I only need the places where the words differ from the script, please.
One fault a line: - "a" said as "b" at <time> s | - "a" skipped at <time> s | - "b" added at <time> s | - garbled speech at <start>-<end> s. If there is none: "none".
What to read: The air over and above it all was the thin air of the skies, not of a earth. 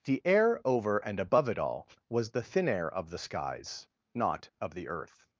- "a" said as "the" at 4.7 s